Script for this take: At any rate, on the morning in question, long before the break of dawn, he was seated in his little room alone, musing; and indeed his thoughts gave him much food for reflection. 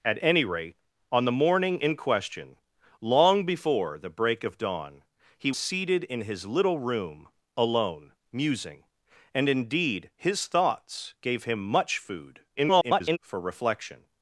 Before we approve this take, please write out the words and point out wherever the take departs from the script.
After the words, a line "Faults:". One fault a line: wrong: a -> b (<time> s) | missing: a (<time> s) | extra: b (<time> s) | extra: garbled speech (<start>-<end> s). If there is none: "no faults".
At any rate, on the morning in question, long before the break of dawn, he seated in his little room alone, musing; and indeed his thoughts gave him much food [garbled] for reflection.
Faults:
missing: was (5.5 s)
extra: garbled speech (12.6-13.2 s)